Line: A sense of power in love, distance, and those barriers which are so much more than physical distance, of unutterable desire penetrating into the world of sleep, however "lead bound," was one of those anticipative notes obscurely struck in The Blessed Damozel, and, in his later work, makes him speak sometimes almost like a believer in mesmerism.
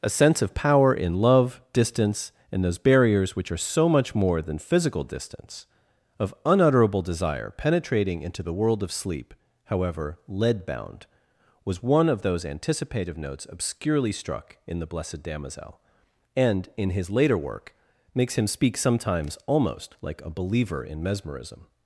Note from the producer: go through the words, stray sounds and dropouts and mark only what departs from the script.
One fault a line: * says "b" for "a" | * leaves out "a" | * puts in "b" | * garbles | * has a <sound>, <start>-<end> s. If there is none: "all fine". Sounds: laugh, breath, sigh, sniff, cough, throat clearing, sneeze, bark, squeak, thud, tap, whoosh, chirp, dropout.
all fine